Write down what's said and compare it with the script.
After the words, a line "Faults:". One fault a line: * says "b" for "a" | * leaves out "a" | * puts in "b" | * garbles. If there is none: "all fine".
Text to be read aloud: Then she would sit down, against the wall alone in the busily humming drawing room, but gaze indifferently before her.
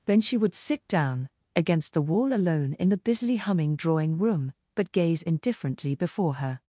Then she would sit down, against the wall alone in the busily humming drawing room, but gaze indifferently before her.
Faults:
all fine